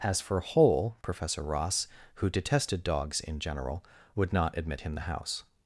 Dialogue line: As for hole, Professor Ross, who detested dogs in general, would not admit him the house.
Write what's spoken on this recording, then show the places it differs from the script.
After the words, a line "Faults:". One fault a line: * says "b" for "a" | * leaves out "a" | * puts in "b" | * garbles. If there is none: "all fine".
As for hole, Professor Ross, who detested dogs in general, would not admit him the house.
Faults:
all fine